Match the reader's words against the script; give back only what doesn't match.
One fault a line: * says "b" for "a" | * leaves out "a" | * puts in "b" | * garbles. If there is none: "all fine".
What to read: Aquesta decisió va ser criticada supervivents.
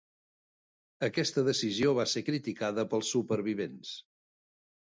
* puts in "pels"